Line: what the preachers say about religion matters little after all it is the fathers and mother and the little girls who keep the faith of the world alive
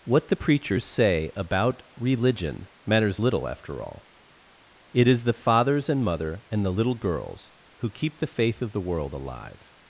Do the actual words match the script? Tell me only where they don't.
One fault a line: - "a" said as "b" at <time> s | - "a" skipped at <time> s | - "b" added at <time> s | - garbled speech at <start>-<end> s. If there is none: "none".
none